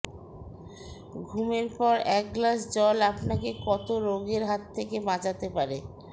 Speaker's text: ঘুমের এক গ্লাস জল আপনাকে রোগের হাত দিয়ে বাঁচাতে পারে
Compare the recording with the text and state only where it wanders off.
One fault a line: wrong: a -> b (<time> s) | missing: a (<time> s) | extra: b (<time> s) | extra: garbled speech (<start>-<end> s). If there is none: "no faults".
extra: পর (1.8 s)
extra: কত (3.6 s)
wrong: দিয়ে -> থেকে (4.8 s)